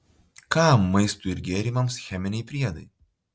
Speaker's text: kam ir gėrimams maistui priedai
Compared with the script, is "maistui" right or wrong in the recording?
wrong